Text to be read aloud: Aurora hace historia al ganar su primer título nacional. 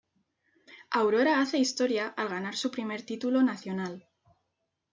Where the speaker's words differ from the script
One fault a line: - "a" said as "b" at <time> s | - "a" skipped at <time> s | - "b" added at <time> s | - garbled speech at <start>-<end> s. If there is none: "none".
none